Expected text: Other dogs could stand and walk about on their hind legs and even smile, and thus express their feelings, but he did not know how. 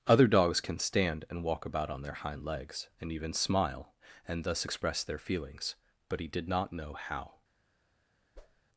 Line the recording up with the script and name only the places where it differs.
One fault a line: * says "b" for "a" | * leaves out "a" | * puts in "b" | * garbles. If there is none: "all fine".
* says "can" for "could"